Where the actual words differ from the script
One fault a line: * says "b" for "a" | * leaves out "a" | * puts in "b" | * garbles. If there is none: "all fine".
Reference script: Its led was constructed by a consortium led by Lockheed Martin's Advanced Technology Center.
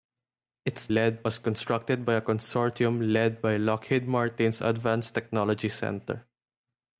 all fine